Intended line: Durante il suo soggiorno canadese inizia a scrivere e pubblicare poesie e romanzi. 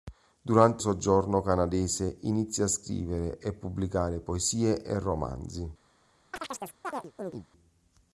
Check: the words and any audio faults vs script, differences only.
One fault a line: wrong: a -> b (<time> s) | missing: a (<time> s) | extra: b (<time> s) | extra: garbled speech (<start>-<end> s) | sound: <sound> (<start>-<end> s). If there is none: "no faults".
missing: il suo (0.8 s)
sound: chirp (6.3-7.5 s)